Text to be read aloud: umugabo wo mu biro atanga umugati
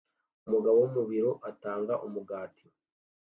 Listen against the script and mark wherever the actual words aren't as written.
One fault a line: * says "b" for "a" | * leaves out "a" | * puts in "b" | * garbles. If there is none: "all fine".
all fine